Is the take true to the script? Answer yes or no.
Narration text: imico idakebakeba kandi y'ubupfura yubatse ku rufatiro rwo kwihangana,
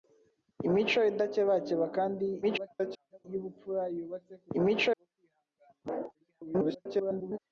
no